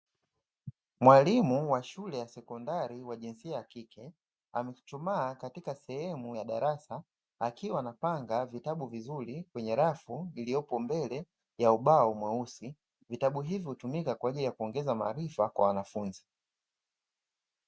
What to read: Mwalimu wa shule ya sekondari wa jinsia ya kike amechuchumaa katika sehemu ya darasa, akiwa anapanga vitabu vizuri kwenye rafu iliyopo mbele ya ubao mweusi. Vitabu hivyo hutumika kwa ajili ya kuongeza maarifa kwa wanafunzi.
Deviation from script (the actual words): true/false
false